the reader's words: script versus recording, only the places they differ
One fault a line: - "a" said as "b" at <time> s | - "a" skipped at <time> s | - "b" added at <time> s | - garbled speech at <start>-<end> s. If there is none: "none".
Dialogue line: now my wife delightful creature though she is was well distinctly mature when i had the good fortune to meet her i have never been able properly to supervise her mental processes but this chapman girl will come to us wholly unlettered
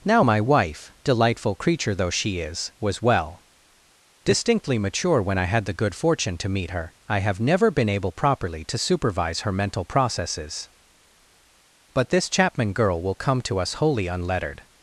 none